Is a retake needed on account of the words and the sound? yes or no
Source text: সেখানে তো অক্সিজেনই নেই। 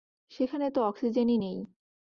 no